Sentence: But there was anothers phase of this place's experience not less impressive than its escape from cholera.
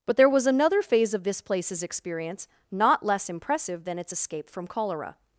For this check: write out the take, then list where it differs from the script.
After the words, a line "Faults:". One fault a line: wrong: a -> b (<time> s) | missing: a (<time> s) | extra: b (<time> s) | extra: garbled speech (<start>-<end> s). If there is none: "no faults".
But there was another phase of this place's experience not less impressive than its escape from cholera.
Faults:
wrong: anothers -> another (0.5 s)